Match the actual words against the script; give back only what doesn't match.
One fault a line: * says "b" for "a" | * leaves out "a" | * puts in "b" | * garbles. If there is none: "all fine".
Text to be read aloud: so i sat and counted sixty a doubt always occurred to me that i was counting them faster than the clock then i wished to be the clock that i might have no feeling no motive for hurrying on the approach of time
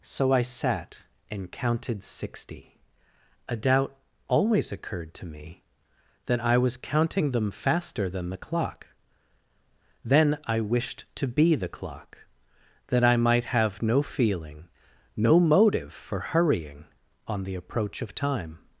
all fine